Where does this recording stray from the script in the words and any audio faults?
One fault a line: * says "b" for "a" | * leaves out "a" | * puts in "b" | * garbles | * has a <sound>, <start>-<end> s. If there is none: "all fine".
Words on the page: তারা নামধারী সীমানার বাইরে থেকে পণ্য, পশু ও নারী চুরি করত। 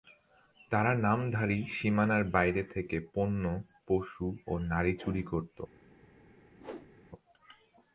* has a whoosh, 6.6-6.9 s